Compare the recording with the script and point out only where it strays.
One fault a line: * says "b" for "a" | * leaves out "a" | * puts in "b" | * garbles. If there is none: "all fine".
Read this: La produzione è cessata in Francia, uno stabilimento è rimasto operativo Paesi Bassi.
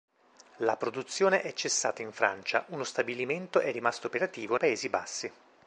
all fine